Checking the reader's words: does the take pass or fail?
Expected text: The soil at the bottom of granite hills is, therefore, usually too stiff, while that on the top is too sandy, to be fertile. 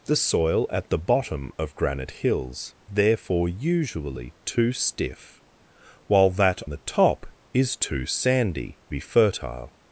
fail